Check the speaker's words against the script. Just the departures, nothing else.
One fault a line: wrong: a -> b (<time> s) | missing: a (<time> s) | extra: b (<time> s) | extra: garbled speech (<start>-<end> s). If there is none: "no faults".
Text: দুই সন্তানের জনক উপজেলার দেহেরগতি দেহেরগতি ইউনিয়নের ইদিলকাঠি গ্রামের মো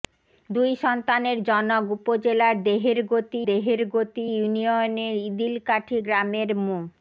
no faults